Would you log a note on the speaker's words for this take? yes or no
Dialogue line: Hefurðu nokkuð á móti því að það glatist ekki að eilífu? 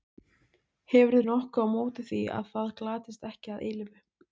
no